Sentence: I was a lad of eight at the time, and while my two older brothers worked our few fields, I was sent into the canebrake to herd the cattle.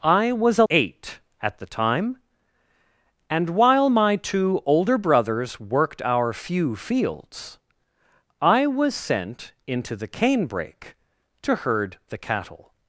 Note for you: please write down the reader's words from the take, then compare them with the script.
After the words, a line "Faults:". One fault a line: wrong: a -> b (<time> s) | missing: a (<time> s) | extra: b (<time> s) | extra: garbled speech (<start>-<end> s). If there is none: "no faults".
I was a eight at the time, and while my two older brothers worked our few fields, I was sent into the canebrake to herd the cattle.
Faults:
missing: lad of (0.7 s)